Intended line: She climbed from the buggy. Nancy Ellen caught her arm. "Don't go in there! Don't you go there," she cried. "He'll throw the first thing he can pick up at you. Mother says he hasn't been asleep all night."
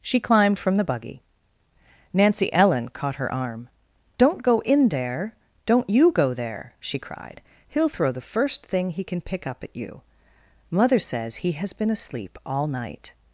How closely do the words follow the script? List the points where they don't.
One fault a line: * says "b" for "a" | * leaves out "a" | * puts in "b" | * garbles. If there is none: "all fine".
* says "has" for "hasn't"